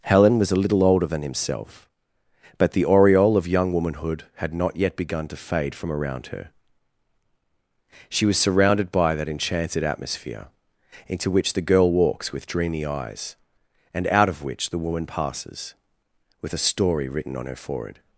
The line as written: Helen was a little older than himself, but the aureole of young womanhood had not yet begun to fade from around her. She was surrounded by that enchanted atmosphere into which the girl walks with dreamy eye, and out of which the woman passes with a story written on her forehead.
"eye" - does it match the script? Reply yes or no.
no